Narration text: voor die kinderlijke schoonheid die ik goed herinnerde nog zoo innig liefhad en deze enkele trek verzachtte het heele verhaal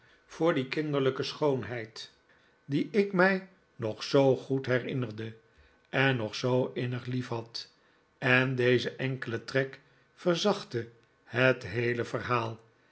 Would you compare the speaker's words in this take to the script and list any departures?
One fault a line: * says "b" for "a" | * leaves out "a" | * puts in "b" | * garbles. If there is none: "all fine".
* puts in "mij nog zoo"
* puts in "en"